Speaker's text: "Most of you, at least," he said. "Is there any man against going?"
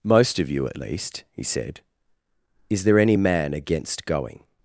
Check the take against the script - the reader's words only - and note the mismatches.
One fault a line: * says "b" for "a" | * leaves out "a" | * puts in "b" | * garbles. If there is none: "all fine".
all fine